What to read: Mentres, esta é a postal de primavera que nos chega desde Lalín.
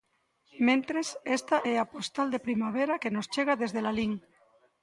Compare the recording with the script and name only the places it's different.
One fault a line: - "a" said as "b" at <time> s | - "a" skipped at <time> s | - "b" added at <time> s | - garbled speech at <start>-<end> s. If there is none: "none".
none